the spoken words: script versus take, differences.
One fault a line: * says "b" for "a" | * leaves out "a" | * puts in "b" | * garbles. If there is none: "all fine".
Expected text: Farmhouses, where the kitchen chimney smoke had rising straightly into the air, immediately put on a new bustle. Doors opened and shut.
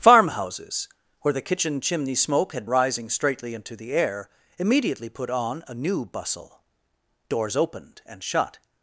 all fine